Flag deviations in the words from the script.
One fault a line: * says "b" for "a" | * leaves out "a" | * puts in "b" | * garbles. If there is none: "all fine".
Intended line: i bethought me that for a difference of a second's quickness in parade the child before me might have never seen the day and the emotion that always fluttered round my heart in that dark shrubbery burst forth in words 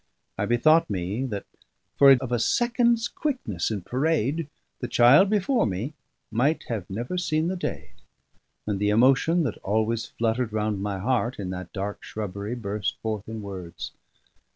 * leaves out "difference"